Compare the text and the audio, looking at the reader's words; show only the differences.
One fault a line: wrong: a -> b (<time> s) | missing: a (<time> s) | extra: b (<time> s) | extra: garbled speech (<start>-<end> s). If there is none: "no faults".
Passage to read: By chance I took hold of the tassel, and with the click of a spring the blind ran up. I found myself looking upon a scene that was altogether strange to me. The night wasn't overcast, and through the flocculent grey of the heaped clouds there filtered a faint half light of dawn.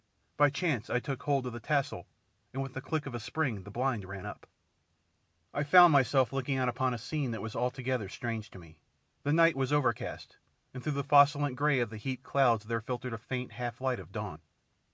extra: out (6.5 s)
wrong: wasn't -> was (9.6 s)